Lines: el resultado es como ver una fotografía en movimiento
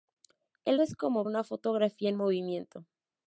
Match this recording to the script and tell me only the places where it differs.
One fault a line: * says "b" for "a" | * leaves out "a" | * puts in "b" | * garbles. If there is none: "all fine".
* leaves out "resultado"
* leaves out "ver"